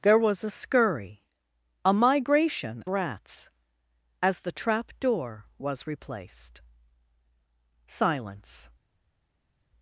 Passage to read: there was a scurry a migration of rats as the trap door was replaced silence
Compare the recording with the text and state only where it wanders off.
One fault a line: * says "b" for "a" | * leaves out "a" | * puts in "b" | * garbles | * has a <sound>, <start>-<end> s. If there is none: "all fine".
* leaves out "of"